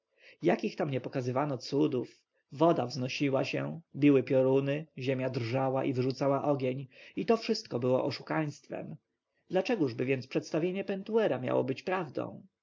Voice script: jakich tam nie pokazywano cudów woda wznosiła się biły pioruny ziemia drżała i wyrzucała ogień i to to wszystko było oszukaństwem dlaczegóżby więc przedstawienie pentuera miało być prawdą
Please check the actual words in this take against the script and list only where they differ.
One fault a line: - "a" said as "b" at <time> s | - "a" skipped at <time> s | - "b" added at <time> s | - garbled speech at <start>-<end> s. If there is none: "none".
- "to" skipped at 7.4 s